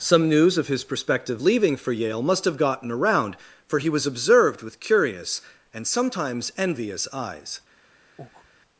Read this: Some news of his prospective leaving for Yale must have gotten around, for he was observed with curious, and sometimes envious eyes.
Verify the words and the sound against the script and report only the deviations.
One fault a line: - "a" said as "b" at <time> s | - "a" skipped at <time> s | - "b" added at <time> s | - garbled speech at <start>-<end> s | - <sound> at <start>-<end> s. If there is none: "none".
- breath at 8.2-8.5 s